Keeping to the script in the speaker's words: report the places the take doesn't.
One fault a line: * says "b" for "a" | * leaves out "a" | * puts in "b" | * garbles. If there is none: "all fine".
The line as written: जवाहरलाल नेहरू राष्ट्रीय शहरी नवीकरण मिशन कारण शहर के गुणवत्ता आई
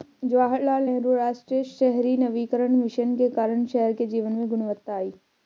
* puts in "के"
* puts in "जीवन में"